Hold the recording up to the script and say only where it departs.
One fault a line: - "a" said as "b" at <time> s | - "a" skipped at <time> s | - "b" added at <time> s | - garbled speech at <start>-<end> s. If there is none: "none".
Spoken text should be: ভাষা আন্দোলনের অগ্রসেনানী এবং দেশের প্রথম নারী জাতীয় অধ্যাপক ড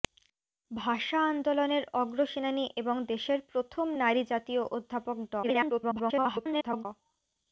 - garbled speech at 5.4-6.9 s